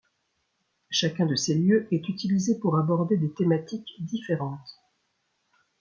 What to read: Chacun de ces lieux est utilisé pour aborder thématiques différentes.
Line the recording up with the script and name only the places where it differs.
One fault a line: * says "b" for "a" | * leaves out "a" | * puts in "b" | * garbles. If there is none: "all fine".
* puts in "des"